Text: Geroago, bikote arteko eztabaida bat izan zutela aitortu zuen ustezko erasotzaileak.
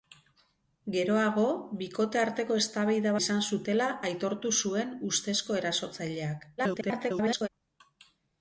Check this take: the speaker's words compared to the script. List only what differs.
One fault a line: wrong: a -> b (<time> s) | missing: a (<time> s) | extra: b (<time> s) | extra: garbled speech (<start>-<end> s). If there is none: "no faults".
missing: bat (3.1 s)
extra: garbled speech (6.6-7.5 s)